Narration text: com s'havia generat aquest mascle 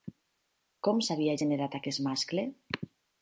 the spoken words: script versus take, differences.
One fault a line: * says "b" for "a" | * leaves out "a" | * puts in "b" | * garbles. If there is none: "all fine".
all fine